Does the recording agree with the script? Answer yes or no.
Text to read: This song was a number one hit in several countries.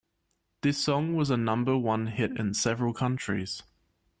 yes